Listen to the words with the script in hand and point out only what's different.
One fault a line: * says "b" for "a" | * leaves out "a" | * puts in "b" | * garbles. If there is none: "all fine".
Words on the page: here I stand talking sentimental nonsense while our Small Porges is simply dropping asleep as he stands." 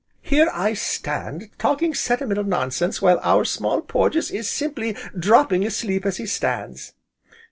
all fine